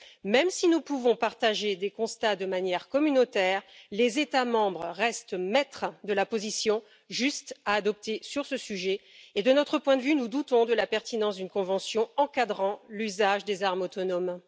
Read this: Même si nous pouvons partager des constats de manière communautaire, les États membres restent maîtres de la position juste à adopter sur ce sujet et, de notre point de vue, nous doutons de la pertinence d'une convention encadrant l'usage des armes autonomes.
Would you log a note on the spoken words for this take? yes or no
no